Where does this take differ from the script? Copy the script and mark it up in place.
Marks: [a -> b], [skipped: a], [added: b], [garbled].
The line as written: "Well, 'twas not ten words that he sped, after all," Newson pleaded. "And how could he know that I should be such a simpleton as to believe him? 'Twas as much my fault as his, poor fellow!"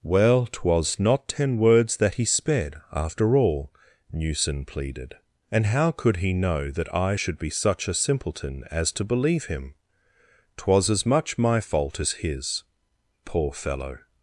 "Well, 'twas not ten words that he sped, after all," Newson pleaded. "And how could he know that I should be such a simpleton as to believe him? 'Twas as much my fault as his, poor fellow!"